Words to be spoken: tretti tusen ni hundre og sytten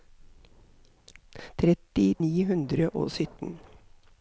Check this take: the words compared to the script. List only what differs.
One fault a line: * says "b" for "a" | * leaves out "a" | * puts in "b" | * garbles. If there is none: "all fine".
* leaves out "tusen"